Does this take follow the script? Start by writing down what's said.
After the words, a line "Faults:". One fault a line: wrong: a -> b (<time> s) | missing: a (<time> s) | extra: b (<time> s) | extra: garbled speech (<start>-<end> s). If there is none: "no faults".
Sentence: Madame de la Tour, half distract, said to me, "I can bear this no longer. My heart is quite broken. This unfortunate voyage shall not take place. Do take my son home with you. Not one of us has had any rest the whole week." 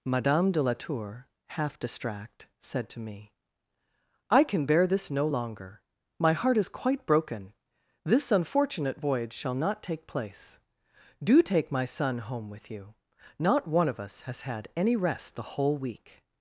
Madame de la Tour, half distract, said to me, "I can bear this no longer. My heart is quite broken. This unfortunate voyage shall not take place. Do take my son home with you. Not one of us has had any rest the whole week."
Faults:
no faults